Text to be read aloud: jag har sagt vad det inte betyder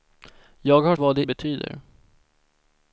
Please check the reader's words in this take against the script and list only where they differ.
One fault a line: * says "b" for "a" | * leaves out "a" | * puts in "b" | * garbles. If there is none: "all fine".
* leaves out "sagt"
* leaves out "inte"